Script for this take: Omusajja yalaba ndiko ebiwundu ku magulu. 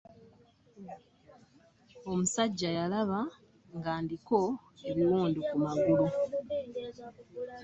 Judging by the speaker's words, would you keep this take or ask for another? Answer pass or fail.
fail